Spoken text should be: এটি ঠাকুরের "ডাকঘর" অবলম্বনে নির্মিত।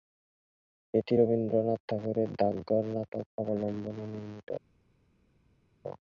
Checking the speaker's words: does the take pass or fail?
fail